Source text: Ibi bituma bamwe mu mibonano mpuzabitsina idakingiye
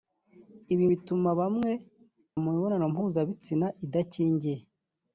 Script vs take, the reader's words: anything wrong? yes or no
no